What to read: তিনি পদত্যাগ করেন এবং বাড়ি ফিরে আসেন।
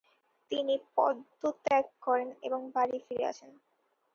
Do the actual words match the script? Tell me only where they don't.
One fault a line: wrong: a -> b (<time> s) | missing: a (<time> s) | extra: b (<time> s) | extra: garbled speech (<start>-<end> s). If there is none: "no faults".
no faults